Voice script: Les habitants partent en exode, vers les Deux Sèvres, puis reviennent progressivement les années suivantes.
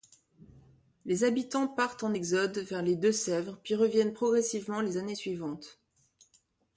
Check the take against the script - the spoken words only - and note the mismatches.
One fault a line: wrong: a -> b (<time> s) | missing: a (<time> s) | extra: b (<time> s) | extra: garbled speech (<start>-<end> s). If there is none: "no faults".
no faults